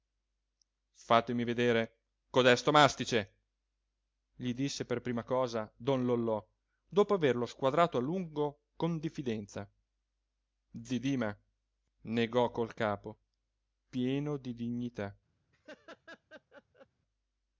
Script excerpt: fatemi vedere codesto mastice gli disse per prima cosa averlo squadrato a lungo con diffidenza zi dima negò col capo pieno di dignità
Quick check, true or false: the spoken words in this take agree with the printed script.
false